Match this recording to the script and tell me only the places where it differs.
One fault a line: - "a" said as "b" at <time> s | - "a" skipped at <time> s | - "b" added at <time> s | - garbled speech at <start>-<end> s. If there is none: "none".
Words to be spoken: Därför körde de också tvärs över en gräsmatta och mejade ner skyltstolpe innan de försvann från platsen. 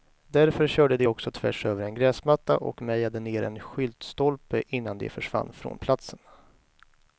- "en" added at 3.4 s